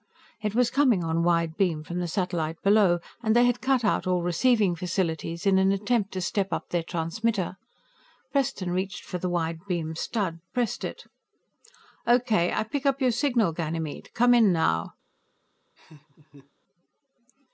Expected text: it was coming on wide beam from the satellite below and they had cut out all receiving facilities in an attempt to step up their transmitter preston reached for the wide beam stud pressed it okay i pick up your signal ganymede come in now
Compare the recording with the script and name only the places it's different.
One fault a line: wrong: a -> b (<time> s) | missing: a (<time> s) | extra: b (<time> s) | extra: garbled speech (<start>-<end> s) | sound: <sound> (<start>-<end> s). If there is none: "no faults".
sound: laugh (15.8-16.5 s)